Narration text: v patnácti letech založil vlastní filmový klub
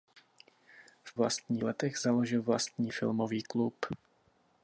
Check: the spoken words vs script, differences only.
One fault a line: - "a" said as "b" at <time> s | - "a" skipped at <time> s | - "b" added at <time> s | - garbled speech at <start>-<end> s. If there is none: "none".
- "patnácti" said as "vlastní" at 1.1 s